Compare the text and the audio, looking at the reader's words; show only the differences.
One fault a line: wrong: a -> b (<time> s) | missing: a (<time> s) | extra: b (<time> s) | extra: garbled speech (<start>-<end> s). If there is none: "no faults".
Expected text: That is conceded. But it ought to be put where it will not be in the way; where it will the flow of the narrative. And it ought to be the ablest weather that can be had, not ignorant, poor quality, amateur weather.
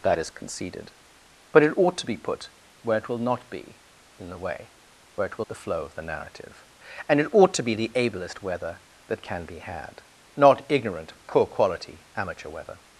no faults